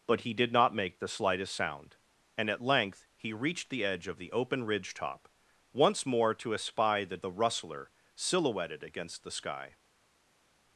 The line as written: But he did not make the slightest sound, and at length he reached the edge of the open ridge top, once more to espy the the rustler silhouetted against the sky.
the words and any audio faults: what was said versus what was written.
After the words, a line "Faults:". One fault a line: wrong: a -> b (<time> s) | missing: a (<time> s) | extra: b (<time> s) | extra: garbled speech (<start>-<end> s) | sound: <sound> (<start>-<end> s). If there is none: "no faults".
But he did not make the slightest sound, and at length he reached the edge of the open ridge top, once more to espy the the rustler silhouetted against the sky.
Faults:
no faults